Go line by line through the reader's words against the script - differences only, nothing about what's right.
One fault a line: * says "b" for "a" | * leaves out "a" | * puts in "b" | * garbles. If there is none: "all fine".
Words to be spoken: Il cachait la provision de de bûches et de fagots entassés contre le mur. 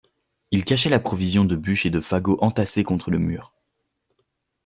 * leaves out "de"